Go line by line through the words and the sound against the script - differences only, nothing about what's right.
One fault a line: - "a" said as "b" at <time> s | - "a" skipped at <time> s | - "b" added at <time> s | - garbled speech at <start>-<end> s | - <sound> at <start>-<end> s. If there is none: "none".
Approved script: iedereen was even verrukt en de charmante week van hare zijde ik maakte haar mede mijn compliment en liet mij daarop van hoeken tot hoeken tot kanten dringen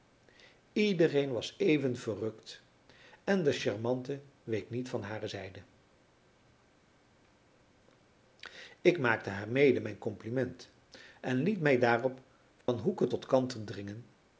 - "niet" added at 4.7 s
- dropout at 12.6-12.7 s
- "hoeken tot" skipped at 13.3 s